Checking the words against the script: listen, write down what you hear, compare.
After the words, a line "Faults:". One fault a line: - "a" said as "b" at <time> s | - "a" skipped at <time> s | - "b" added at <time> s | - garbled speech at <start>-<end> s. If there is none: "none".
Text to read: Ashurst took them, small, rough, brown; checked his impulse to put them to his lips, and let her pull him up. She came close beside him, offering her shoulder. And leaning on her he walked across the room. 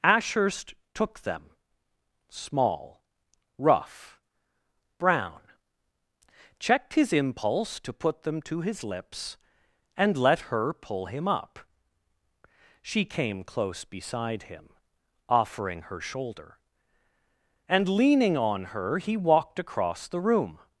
Ashurst took them, small, rough, brown; checked his impulse to put them to his lips, and let her pull him up. She came close beside him, offering her shoulder. And leaning on her he walked across the room.
Faults:
none